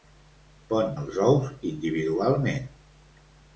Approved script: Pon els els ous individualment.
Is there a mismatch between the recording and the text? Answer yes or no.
yes